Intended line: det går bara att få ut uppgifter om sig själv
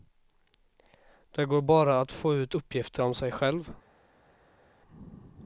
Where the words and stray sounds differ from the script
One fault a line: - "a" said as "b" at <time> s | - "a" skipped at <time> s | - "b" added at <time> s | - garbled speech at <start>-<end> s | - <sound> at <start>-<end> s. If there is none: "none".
none